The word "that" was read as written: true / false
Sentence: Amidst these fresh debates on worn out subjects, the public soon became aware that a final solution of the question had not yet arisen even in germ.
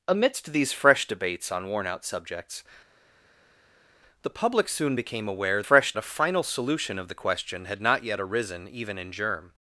false